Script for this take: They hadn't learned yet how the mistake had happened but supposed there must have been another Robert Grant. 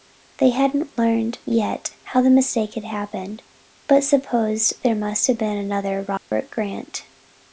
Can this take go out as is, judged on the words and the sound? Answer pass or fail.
fail